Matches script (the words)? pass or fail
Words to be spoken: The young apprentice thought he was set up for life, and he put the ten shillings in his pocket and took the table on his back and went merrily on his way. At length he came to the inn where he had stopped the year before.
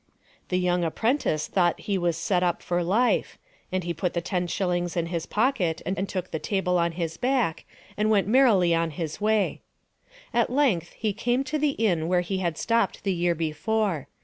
fail